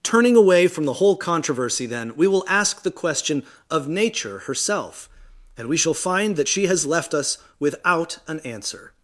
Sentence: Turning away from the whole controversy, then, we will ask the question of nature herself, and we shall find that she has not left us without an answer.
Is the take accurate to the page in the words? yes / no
no